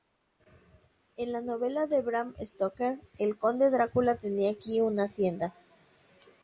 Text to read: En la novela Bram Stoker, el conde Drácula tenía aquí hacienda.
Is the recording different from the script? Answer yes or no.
yes